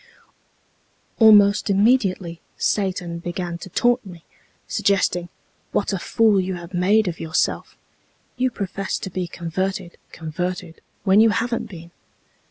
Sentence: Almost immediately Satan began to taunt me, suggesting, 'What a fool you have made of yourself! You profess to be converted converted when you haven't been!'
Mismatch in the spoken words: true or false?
false